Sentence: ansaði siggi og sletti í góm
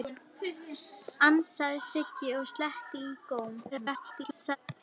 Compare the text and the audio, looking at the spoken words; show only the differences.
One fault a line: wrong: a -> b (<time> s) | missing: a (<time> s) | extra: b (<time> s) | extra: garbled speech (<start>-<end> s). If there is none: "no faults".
extra: garbled speech (3.7-4.6 s)